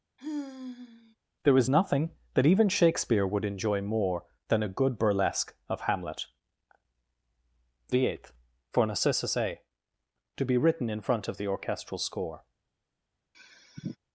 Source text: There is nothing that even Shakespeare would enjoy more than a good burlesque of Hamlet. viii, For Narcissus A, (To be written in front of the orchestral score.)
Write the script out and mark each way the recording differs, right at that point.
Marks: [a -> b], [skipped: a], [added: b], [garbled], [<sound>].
[sigh] There is nothing that even Shakespeare would enjoy more than a good burlesque of Hamlet. [viii, -> the eighth] For Narcissus A, (To be written in front of the orchestral score.) [sigh]